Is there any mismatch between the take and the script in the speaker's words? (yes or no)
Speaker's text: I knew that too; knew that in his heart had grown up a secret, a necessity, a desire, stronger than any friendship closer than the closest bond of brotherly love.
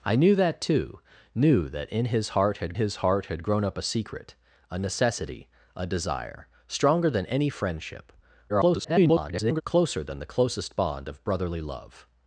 yes